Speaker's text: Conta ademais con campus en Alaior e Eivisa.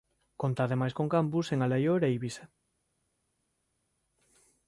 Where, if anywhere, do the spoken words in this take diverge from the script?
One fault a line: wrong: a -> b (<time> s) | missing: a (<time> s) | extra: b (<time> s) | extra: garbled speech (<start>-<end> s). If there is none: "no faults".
no faults